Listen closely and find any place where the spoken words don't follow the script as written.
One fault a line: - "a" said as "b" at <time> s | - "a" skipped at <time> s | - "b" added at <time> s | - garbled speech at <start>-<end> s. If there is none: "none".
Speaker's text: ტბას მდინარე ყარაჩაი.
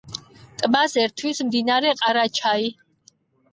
- "ერთვის" added at 1.0 s